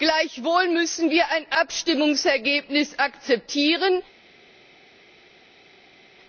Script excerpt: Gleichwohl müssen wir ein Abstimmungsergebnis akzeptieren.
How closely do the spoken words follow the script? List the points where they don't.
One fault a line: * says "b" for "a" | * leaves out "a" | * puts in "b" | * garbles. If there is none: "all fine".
all fine